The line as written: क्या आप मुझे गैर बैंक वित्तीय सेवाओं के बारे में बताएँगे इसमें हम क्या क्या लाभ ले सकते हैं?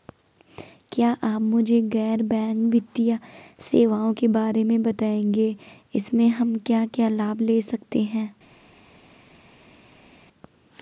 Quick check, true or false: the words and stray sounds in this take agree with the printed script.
true